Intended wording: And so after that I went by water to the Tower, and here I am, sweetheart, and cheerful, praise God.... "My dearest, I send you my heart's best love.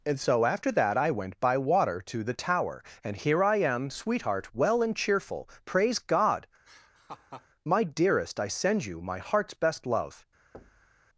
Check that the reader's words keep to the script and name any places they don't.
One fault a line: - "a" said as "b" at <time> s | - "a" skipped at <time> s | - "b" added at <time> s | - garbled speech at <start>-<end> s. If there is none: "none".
- "well" added at 4.5 s